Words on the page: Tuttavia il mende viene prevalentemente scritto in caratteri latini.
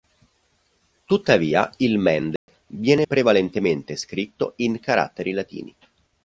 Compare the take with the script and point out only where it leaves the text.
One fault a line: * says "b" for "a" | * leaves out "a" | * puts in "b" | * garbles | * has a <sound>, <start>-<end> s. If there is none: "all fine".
* has a dropout, 2.4-2.5 s